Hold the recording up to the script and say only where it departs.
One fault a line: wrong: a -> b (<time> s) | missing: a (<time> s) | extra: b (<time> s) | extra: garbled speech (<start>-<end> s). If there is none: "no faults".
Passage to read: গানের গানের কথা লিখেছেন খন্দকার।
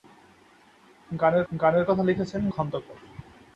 no faults